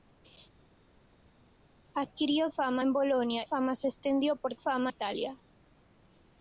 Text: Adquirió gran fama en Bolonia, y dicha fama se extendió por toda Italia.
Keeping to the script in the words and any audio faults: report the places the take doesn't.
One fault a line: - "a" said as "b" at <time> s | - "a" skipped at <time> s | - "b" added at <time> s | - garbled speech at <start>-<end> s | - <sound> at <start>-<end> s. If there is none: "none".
- "gran" skipped at 2.5 s
- "y dicha" skipped at 3.4 s
- "toda" said as "fama" at 4.6 s